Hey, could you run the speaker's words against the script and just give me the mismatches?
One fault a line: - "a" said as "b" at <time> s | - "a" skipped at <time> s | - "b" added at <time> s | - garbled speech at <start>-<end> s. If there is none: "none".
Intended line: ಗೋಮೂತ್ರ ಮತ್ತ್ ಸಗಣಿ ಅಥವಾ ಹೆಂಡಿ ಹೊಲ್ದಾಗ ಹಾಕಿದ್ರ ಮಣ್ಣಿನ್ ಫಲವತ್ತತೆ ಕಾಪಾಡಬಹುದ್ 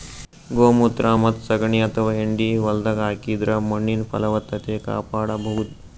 none